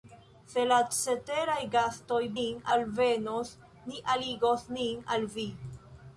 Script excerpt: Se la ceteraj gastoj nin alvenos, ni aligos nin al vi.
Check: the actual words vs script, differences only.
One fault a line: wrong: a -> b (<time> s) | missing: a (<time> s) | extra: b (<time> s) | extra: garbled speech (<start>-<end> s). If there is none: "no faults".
no faults